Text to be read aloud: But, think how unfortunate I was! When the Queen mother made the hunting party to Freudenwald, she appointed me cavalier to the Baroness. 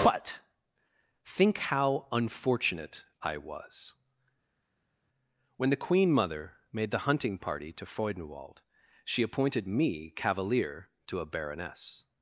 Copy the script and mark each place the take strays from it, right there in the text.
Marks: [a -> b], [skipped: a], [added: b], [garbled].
But, think how unfortunate I was! When the Queen mother made the hunting party to Freudenwald, she appointed me cavalier to [the -> a] Baroness.